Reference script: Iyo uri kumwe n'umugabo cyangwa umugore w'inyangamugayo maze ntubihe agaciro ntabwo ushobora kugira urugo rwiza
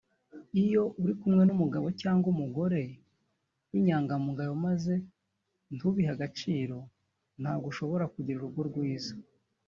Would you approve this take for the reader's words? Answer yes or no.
yes